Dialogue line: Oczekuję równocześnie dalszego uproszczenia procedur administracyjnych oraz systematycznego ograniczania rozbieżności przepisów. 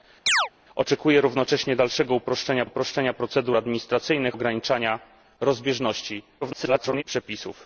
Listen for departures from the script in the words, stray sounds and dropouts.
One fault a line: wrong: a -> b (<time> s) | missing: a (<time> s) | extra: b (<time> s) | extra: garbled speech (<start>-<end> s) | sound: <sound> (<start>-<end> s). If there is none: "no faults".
sound: chirp (0.3-0.5 s)
extra: uproszczenia (2.6 s)
missing: oraz systematycznego (4.4 s)
extra: garbled speech (6.4-7.0 s)